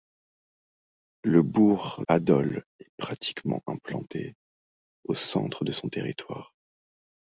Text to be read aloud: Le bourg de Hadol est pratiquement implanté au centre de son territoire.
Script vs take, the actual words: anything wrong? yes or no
yes